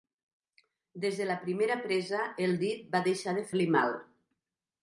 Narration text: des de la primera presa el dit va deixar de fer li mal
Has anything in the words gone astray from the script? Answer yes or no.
yes